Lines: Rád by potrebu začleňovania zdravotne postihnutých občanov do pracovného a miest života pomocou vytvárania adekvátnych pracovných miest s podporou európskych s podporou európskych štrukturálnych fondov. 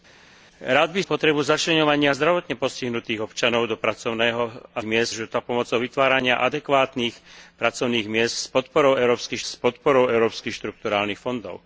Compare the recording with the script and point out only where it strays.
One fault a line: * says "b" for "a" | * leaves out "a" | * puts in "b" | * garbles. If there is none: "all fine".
all fine